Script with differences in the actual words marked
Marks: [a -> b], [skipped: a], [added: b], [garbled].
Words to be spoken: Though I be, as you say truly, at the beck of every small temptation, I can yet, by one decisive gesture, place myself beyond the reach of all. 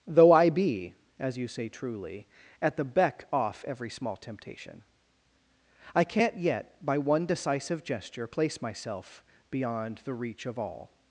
Though I be, as you say truly, at the beck [of -> off] every small temptation, I [can -> can't] yet, by one decisive gesture, place myself beyond the reach of all.